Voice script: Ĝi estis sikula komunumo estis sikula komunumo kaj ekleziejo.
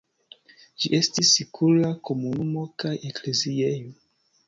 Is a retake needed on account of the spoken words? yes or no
yes